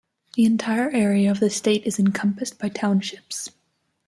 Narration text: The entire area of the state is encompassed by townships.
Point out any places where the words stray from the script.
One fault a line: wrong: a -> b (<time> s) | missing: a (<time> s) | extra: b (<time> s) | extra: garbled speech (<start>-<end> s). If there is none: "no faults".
no faults